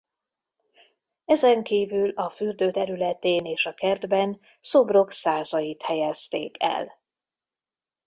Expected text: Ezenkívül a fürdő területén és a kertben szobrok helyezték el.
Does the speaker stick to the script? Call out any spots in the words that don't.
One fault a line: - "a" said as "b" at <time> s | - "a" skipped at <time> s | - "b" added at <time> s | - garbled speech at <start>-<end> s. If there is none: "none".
- "százait" added at 5.1 s